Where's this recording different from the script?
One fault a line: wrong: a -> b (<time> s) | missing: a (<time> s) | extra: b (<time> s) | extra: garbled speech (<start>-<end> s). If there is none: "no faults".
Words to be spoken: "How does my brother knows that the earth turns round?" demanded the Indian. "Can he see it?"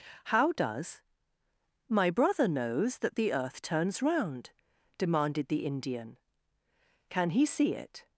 no faults